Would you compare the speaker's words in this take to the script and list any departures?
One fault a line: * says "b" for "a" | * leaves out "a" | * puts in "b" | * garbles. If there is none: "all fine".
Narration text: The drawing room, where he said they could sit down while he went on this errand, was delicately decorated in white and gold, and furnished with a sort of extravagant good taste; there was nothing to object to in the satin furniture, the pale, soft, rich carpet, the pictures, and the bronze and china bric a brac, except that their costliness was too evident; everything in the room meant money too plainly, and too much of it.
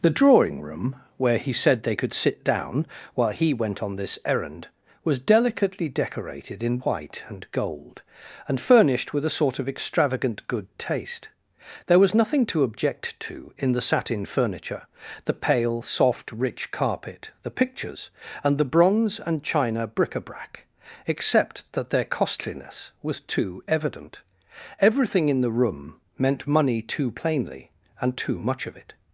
all fine